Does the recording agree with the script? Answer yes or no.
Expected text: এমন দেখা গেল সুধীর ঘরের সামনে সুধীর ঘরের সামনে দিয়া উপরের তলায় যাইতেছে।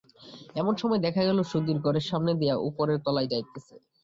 no